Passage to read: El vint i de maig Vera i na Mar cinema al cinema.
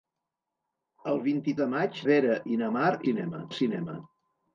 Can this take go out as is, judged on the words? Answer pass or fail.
pass